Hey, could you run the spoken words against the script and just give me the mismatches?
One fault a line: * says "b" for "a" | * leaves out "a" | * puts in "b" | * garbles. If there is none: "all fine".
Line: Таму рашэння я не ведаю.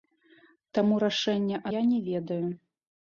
all fine